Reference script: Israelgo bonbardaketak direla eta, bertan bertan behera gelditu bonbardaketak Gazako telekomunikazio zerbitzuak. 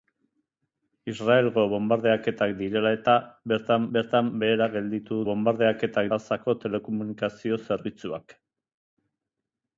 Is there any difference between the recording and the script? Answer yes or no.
no